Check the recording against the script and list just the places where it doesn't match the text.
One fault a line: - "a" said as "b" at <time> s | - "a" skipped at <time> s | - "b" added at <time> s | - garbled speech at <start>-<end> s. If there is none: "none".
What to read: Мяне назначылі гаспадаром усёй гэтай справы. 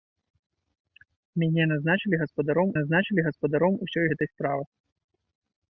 - "назначылі гаспадаром" added at 2.8 s